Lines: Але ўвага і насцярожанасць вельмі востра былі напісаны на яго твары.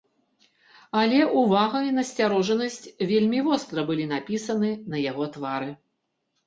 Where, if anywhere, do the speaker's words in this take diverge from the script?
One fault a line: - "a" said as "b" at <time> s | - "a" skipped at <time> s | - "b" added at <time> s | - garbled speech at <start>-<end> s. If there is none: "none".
none